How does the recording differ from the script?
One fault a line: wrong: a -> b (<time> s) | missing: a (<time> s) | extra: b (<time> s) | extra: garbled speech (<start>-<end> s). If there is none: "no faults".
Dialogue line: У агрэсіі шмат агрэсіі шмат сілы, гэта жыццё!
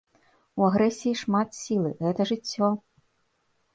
missing: агрэсіі шмат (1.5 s)